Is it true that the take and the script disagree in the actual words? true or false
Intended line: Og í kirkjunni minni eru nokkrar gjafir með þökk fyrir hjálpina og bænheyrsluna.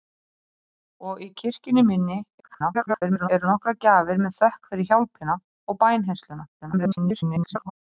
true